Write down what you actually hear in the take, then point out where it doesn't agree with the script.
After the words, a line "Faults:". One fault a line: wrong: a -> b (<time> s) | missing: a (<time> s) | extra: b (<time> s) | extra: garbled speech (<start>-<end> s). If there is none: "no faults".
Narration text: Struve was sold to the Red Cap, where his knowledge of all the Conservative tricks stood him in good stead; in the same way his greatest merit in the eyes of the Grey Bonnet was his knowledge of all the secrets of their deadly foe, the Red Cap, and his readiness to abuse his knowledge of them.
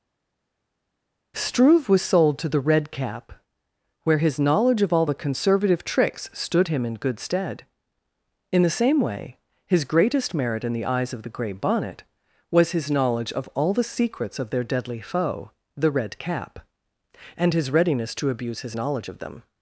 Struve was sold to the Red Cap, where his knowledge of all the Conservative tricks stood him in good stead; in the same way his greatest merit in the eyes of the Grey Bonnet was his knowledge of all the secrets of their deadly foe, the Red Cap, and his readiness to abuse his knowledge of them.
Faults:
no faults